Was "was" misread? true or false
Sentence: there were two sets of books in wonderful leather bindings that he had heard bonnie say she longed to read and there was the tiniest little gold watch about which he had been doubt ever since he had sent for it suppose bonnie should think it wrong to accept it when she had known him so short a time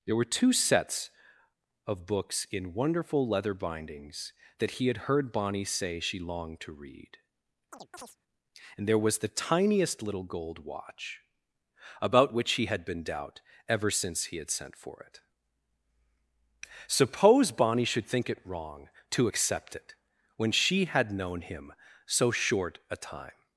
false